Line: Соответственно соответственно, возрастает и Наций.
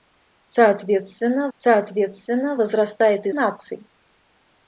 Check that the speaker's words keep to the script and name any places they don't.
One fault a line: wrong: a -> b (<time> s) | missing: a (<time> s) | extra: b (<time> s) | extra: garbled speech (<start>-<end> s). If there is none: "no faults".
no faults